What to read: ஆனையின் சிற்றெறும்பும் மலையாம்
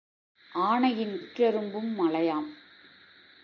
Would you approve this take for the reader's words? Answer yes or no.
yes